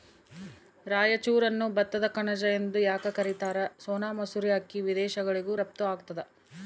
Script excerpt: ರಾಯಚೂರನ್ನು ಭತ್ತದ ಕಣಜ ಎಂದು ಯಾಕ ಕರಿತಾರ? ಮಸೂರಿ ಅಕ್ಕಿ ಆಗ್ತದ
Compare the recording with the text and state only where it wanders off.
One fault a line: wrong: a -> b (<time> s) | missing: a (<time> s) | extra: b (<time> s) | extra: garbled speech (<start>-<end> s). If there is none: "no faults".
extra: ಸೋನಾ (3.8 s)
extra: ವಿದೇಶಗಳಿಗೂ ರಫ್ತು (4.8 s)